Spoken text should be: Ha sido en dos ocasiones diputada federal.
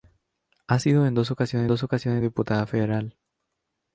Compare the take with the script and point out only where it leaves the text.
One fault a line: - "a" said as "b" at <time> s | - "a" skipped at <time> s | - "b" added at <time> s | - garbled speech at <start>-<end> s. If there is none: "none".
- "dos ocasiones" added at 1.7 s